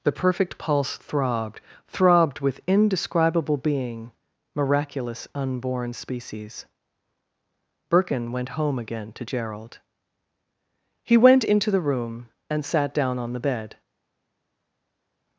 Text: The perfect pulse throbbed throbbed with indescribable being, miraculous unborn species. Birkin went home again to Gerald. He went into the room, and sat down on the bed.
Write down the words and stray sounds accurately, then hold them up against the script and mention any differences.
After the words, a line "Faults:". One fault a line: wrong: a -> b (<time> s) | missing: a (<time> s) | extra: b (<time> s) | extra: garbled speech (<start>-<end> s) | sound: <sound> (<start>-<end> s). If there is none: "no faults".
The perfect pulse throbbed throbbed with indescribable being, miraculous unborn species. Birkin went home again to Gerald. He went into the room, and sat down on the bed.
Faults:
no faults